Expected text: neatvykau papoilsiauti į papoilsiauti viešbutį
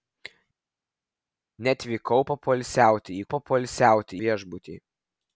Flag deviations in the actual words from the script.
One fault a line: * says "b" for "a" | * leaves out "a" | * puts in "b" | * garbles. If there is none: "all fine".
all fine